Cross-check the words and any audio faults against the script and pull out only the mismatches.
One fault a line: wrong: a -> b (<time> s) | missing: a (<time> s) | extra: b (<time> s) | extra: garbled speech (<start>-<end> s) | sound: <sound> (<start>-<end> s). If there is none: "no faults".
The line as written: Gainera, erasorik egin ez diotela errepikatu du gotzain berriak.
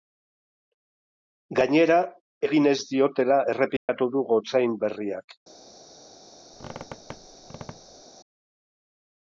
missing: erasorik (2.0 s)
sound: dropout (3.8-3.9 s)
sound: squeak (6.5-8.0 s)